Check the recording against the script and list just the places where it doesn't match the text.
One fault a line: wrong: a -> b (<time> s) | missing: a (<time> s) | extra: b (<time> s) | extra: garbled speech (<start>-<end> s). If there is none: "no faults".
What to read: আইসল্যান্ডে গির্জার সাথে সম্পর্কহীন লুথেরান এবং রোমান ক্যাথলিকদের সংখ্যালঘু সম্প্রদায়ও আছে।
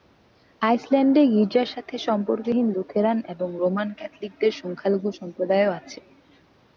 no faults